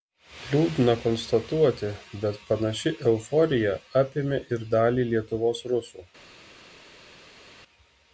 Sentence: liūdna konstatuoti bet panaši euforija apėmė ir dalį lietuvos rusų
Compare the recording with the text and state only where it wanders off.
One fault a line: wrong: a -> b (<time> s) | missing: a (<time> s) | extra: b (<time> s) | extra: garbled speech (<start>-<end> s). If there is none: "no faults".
no faults